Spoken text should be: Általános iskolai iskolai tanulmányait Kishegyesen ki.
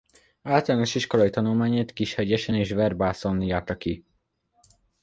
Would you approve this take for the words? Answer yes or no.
no